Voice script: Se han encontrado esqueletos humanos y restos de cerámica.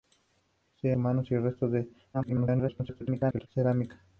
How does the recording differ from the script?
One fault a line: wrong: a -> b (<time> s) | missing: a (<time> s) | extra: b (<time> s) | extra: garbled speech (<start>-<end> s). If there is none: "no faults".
missing: han encontrado esqueletos (0.9 s)
extra: garbled speech (2.1-3.5 s)